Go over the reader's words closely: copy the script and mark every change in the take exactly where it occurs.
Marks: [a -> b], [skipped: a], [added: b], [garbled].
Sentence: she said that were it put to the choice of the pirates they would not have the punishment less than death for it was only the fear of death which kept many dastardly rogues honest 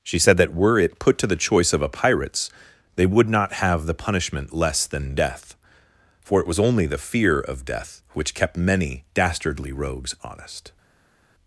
she said that were it put to the choice of [the -> a] pirates they would not have the punishment less than death for it was only the fear of death which kept many dastardly rogues honest